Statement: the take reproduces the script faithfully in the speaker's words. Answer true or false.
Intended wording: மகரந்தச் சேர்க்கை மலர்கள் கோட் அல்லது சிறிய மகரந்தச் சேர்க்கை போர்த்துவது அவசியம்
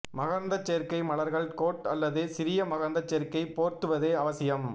true